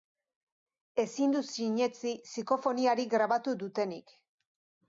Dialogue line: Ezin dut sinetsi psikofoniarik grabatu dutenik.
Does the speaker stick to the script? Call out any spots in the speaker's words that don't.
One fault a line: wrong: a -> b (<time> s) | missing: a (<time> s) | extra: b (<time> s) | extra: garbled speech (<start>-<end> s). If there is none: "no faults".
no faults